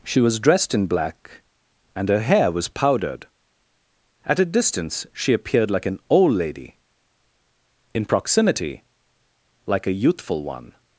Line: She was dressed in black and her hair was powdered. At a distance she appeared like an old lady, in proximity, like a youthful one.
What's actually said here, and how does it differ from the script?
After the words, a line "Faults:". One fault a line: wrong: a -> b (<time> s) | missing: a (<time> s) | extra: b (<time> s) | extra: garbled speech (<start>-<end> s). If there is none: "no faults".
She was dressed in black and her hair was powdered. At a distance she appeared like an old lady, in proximity, like a youthful one.
Faults:
no faults